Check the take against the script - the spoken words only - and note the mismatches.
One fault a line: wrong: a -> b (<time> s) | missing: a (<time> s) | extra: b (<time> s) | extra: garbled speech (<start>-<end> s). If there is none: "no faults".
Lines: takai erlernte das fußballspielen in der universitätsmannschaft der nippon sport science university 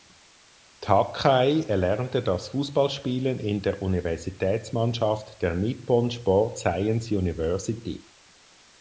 no faults